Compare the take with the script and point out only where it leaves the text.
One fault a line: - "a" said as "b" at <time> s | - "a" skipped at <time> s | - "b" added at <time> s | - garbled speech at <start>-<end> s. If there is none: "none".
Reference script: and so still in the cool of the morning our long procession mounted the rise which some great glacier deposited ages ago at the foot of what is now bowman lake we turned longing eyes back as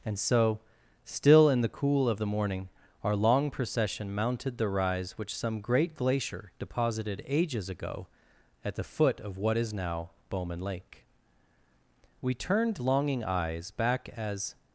none